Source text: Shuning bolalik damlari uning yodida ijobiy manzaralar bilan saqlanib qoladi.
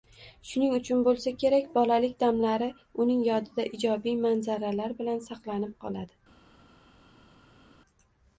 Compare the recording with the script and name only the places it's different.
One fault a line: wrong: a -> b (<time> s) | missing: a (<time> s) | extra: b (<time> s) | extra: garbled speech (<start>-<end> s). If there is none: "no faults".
extra: uchun bo‘lsa kerak (0.8 s)